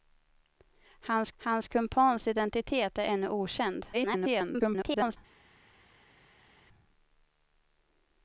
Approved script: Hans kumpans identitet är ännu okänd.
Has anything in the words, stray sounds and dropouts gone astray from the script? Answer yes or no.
yes